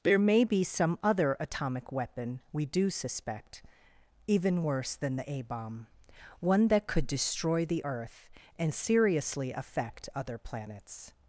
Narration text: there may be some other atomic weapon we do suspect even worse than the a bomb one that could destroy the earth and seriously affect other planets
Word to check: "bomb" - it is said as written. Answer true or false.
true